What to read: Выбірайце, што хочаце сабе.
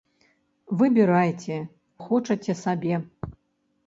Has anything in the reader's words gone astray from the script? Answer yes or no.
yes